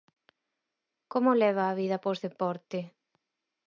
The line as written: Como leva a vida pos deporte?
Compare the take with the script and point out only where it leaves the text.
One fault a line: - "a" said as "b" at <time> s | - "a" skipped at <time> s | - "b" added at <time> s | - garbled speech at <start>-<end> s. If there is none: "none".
none